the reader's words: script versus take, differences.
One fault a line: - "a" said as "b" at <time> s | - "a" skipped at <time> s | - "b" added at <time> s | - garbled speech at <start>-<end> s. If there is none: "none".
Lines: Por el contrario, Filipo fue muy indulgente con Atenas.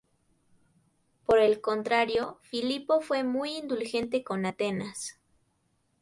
none